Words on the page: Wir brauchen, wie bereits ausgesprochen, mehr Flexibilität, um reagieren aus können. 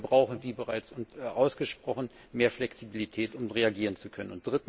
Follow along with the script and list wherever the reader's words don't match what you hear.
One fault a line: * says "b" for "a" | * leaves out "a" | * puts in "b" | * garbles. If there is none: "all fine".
* says "zu" for "aus"